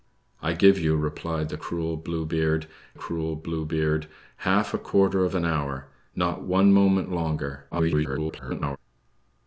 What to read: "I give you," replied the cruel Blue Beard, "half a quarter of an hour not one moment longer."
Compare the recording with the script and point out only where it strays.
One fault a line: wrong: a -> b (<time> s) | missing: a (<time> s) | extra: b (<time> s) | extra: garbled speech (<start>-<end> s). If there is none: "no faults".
extra: cruel Blue Beard (3.0 s)
extra: garbled speech (7.7-8.8 s)